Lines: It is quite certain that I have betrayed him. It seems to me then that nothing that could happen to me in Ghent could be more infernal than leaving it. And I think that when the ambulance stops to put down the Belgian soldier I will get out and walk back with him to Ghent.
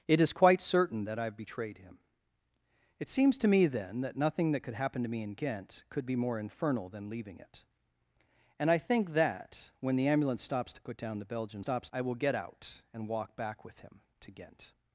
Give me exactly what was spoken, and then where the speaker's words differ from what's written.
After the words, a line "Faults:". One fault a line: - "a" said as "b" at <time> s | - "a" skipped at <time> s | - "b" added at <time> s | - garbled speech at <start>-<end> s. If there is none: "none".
It is quite certain that I have betrayed him. It seems to me then that nothing that could happen to me in Ghent could be more infernal than leaving it. And I think that when the ambulance stops to put down the Belgian stops I will get out and walk back with him to Ghent.
Faults:
- "soldier" said as "stops" at 11.6 s